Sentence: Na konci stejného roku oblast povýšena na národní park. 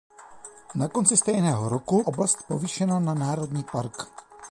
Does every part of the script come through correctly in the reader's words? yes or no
yes